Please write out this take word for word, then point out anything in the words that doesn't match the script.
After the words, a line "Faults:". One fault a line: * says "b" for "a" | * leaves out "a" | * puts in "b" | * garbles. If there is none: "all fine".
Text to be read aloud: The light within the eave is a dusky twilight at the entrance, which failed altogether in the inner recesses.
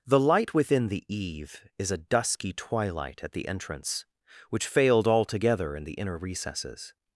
The light within the eave is a dusky twilight at the entrance, which failed altogether in the inner recesses.
Faults:
all fine